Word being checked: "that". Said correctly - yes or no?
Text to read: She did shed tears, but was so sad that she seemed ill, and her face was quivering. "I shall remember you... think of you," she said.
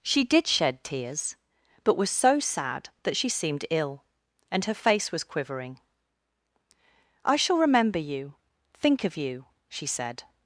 yes